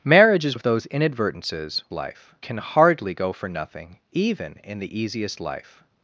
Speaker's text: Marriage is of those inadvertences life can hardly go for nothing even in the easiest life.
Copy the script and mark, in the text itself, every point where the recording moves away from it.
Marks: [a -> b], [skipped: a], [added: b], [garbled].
Marriage is of those inadvertences life can hardly go for nothing even in the easiest life.